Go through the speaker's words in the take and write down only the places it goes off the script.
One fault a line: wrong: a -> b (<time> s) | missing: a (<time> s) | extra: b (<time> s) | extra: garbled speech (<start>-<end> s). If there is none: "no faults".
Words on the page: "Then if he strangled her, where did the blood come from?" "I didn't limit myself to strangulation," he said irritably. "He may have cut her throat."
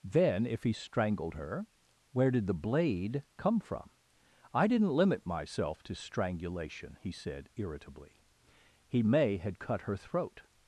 wrong: blood -> blade (2.5 s)
wrong: have -> had (9.4 s)